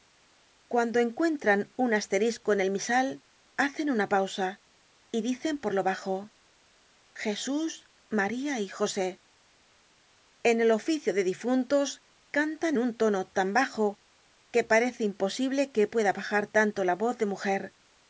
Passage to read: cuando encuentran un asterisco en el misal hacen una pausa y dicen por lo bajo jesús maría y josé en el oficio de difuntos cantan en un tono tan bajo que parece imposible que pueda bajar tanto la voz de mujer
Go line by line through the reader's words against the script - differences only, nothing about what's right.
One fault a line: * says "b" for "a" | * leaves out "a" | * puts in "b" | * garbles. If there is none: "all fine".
* leaves out "en"